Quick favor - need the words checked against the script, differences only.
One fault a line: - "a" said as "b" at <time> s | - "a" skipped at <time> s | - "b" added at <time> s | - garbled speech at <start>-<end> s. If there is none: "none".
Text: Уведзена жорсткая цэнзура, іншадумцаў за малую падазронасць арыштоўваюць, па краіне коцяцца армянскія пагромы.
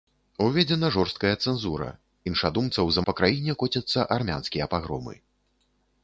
- "малую падазронасць арыштоўваюць" skipped at 3.0 s